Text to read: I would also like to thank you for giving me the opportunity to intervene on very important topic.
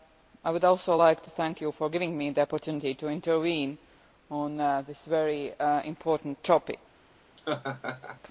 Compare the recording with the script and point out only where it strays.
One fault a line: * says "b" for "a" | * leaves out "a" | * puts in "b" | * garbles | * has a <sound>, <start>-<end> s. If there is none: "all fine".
* puts in "this"
* has a laugh, 7.4-8.2 s